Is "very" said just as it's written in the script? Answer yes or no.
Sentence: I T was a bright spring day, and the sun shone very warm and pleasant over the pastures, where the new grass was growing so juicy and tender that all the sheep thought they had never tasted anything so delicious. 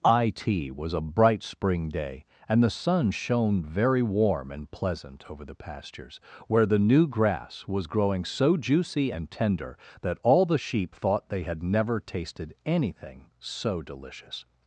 yes